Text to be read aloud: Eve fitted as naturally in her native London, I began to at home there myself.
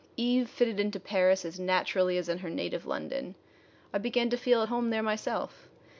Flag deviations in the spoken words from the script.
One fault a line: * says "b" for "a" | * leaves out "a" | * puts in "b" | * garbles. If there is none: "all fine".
* puts in "into Paris"
* puts in "as"
* puts in "feel"